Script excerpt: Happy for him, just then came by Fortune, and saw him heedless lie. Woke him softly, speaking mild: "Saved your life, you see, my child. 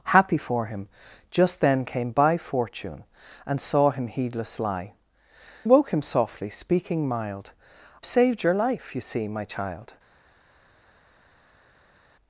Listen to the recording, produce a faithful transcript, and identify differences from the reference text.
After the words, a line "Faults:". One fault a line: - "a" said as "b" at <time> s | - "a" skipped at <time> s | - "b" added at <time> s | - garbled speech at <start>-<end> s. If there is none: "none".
Happy for him, just then came by Fortune, and saw him heedless lie. Woke him softly, speaking mild: "Saved your life, you see, my child.
Faults:
none